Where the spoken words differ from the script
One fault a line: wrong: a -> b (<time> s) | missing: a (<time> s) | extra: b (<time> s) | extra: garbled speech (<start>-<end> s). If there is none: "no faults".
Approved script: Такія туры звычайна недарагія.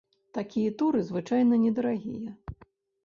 no faults